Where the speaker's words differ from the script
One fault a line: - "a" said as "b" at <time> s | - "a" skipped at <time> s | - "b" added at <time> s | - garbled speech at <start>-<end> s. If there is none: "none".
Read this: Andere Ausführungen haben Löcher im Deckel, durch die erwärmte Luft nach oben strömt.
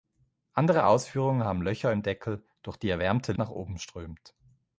- "Luft" skipped at 3.3 s